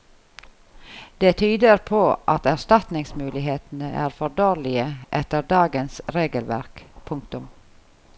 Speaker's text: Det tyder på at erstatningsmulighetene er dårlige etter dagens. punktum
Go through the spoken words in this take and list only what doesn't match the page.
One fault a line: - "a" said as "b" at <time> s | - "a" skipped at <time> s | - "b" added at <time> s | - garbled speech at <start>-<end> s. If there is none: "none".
- "for" added at 4.2 s
- "regelverk" added at 6.2 s